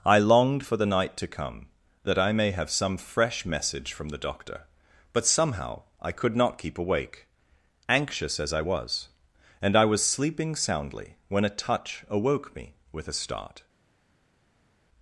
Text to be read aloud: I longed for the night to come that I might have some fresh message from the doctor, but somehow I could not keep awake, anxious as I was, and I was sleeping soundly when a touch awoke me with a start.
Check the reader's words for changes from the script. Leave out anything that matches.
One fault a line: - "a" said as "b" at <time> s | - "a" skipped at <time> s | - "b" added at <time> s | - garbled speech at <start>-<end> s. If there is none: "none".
- "might" said as "may" at 2.3 s